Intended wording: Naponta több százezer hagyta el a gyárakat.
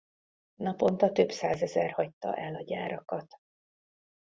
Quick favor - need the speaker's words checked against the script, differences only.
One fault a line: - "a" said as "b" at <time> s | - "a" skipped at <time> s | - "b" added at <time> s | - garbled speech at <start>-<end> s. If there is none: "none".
none